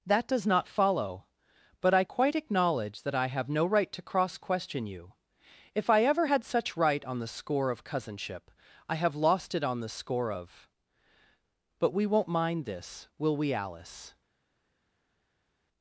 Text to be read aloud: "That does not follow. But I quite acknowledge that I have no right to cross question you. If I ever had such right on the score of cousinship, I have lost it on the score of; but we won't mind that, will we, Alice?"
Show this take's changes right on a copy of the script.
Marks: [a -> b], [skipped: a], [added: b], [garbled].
"That does not follow. But I quite acknowledge that I have no right to cross question you. If I ever had such right on the score of cousinship, I have lost it on the score of; but we won't mind [that, -> this] will we, Alice?"